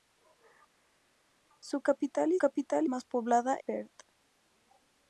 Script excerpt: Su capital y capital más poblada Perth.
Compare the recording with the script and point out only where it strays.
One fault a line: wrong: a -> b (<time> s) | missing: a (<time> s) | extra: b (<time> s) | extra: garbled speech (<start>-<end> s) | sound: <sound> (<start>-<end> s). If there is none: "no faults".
no faults